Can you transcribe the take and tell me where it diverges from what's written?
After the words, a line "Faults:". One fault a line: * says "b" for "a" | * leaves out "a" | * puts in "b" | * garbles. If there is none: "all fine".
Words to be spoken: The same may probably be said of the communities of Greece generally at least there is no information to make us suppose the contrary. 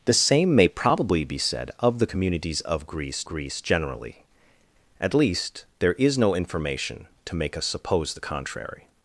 The same may probably be said of the communities of Greece Greece generally at least there is no information to make us suppose the contrary.
Faults:
* puts in "Greece"